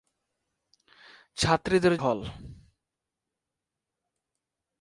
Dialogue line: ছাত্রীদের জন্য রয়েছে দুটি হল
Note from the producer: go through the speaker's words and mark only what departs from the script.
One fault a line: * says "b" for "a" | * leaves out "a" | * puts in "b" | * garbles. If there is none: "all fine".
* leaves out "জন্য রয়েছে দুটি"